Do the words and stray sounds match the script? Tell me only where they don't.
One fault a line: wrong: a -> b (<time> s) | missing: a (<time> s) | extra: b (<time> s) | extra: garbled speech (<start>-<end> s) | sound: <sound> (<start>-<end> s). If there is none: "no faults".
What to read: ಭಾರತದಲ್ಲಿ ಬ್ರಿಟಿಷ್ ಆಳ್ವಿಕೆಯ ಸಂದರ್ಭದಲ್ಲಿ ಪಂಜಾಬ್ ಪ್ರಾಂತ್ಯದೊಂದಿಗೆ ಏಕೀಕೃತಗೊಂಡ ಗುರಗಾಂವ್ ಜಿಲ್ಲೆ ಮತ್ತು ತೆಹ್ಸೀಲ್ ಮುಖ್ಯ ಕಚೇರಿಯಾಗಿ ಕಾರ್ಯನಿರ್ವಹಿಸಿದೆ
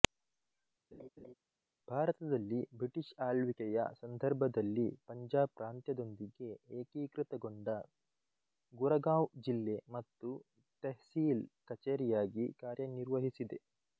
sound: laugh (0.9-1.3 s)
missing: ಮುಖ್ಯ (11.4 s)